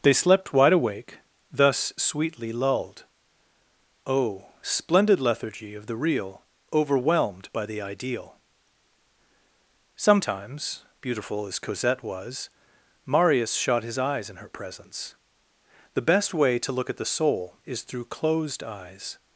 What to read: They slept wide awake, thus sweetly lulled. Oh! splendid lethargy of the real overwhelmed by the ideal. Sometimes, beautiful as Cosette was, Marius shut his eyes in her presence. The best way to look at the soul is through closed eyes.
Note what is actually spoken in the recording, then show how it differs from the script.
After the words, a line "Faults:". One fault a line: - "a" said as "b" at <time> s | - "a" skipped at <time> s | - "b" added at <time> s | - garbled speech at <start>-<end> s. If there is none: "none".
They slept wide awake, thus sweetly lulled. Oh! splendid lethargy of the real overwhelmed by the ideal. Sometimes, beautiful as Cosette was, Marius shot his eyes in her presence. The best way to look at the soul is through closed eyes.
Faults:
- "shut" said as "shot" at 13.6 s